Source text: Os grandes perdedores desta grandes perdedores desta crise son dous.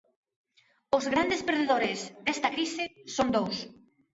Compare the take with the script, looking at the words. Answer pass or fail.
fail